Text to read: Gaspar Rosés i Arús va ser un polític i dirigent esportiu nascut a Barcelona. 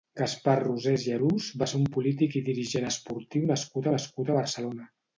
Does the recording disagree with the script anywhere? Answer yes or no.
yes